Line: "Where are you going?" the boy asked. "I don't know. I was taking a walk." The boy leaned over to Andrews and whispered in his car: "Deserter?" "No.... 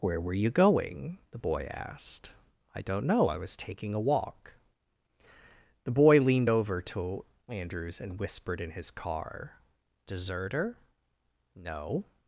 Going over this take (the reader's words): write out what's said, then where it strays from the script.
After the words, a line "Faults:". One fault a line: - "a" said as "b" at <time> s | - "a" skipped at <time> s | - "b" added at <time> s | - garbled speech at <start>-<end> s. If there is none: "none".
"Where were you going?" the boy asked. "I don't know. I was taking a walk." The boy leaned over to Andrews and whispered in his car: "Deserter?" "No....
Faults:
- "are" said as "were" at 0.2 s